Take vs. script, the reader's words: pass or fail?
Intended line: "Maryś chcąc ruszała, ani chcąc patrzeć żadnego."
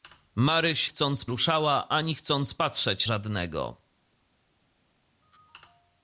pass